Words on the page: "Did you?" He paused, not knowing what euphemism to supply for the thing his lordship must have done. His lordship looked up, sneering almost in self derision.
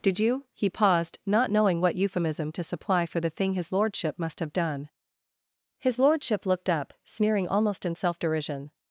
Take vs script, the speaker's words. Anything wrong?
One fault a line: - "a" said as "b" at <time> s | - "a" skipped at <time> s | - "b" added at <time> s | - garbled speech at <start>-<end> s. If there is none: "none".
none